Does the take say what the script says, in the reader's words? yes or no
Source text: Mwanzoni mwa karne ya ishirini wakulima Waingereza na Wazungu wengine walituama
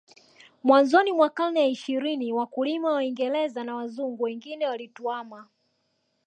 yes